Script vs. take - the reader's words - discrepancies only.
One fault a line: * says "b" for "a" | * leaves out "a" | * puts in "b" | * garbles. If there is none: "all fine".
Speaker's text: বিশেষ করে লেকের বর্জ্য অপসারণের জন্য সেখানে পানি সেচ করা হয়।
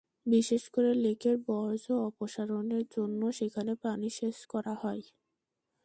all fine